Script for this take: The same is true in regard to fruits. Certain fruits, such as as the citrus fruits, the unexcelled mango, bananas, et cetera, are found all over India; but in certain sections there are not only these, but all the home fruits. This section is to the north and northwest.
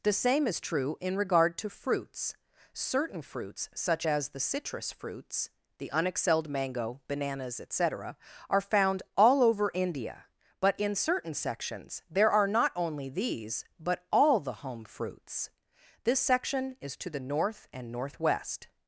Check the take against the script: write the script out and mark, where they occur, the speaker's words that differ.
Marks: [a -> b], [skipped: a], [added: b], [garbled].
The same is true in regard to fruits. Certain fruits, such as [skipped: as] the citrus fruits, the unexcelled mango, bananas, et cetera, are found all over India; but in certain sections there are not only these, but all the home fruits. This section is to the north and northwest.